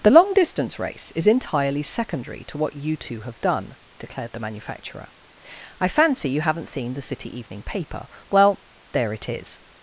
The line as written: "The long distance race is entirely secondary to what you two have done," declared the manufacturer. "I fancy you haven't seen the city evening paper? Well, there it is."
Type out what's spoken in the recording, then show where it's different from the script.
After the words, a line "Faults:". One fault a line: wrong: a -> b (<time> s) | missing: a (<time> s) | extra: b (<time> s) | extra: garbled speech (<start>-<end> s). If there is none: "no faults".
"The long distance race is entirely secondary to what you two have done," declared the manufacturer. "I fancy you haven't seen the city evening paper? Well, there it is."
Faults:
no faults